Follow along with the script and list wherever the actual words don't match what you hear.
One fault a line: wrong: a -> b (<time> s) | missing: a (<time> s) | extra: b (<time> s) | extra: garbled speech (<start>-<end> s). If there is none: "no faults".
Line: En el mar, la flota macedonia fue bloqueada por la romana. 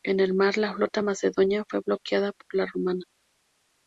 no faults